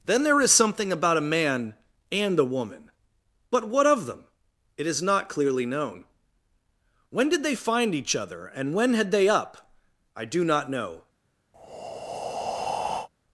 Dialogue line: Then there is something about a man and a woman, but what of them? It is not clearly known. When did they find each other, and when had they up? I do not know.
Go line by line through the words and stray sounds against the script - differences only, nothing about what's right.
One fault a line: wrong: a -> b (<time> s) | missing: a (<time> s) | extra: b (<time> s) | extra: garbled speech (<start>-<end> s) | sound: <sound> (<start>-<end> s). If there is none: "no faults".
sound: breath (11.5-13.1 s)